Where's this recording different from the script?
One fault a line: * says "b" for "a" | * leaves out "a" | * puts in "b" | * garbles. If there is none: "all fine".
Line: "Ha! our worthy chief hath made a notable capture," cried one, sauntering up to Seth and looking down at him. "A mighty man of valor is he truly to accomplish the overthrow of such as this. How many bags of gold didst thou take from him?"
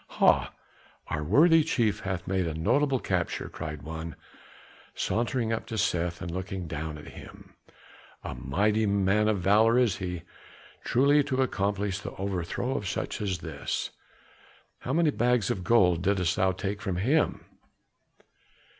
all fine